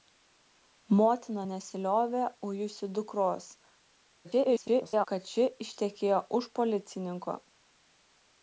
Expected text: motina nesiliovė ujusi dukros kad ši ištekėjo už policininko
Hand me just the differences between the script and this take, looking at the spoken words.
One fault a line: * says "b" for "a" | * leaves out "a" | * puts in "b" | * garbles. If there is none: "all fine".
* garbles